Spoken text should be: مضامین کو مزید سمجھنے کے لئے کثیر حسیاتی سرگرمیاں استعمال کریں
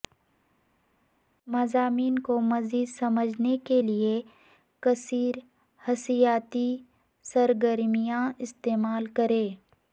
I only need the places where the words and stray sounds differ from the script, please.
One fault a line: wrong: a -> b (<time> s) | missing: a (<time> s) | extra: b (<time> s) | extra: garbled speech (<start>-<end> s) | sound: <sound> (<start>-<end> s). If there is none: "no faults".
no faults